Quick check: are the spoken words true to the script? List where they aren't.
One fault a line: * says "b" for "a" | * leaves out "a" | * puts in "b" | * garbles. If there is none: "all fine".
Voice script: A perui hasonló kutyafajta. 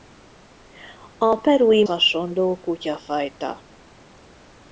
all fine